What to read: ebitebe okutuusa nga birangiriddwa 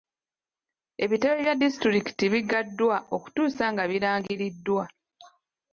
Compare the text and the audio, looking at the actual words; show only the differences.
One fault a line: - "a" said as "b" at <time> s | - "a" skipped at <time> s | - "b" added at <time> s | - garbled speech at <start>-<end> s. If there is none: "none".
- "bya disitulikiti biggaddwa" added at 1.4 s